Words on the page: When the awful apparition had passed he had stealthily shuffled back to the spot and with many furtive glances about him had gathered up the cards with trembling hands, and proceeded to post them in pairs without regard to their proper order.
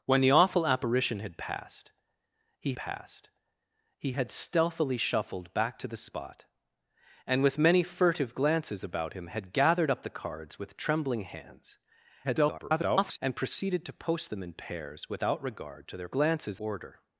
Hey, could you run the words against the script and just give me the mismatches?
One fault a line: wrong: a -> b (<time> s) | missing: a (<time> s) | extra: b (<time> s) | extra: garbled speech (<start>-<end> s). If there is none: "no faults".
extra: passed he (2.7 s)
extra: garbled speech (12.2-13.2 s)
wrong: proper -> glances (16.1 s)